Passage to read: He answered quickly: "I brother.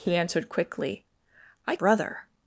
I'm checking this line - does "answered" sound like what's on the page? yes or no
yes